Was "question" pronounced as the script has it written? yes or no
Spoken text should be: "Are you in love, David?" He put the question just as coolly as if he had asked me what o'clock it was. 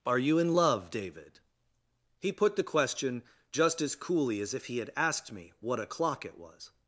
yes